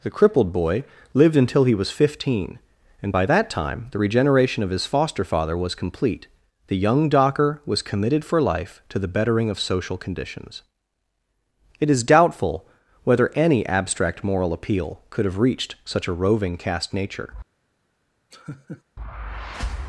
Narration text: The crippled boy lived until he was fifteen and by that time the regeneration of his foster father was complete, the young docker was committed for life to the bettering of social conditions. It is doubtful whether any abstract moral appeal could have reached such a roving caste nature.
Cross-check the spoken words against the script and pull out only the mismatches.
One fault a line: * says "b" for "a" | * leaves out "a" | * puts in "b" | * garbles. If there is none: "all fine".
all fine